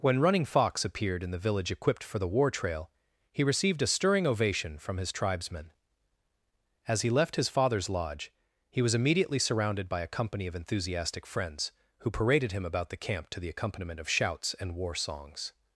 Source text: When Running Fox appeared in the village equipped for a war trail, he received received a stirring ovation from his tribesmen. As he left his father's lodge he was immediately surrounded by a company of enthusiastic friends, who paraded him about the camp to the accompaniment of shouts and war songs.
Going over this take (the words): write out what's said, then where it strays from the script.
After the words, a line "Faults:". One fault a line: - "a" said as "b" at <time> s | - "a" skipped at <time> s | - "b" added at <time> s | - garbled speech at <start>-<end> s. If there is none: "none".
When Running Fox appeared in the village equipped for the war trail, he received a stirring ovation from his tribesmen. As he left his father's lodge he was immediately surrounded by a company of enthusiastic friends, who paraded him about the camp to the accompaniment of shouts and war songs.
Faults:
- "a" said as "the" at 2.2 s
- "received" skipped at 3.8 s